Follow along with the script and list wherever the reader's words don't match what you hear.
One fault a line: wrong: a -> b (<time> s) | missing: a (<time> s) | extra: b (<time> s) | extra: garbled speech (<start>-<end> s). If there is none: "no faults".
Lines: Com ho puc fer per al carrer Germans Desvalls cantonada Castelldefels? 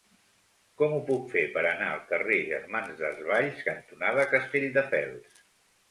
extra: anar (1.7 s)